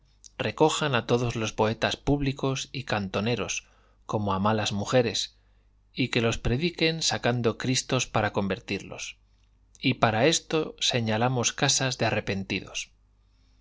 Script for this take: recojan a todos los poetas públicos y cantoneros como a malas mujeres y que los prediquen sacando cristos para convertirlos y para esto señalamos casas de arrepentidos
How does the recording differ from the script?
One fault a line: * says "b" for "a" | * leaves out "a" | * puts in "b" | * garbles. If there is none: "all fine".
all fine